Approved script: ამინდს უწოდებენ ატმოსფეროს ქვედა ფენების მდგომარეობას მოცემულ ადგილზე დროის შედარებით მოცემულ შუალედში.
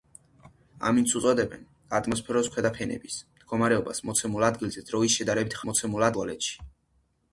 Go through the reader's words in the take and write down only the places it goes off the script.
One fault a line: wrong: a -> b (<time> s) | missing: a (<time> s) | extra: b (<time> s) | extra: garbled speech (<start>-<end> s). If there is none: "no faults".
no faults